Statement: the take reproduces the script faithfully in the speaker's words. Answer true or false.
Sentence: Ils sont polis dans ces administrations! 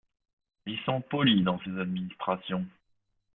true